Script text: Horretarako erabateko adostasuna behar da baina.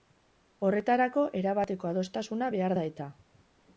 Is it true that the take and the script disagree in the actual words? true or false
true